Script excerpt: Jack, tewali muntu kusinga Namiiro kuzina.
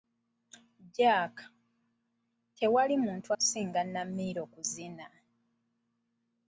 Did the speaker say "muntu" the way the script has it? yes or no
yes